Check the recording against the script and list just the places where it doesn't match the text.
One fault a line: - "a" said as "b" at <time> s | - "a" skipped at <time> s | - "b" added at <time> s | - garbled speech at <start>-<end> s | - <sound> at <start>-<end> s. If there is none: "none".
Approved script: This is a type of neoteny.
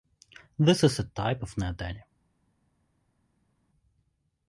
none